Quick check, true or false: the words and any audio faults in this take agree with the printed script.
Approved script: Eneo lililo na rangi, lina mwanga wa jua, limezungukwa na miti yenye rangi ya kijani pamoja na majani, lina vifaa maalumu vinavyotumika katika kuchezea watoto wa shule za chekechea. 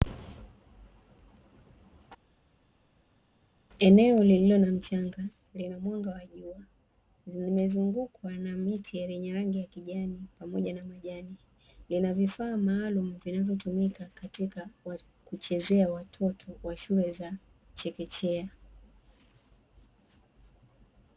false